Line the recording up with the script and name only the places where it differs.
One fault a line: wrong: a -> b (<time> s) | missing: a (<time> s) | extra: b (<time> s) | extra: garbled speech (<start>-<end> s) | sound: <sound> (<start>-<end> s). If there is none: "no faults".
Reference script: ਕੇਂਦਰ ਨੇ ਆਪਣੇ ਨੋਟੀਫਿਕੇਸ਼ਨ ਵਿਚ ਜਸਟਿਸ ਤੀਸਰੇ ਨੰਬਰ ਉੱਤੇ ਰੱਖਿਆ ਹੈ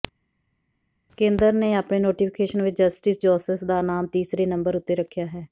extra: ਜੋਸੇਫ ਦਾ ਨਾਮ (3.2 s)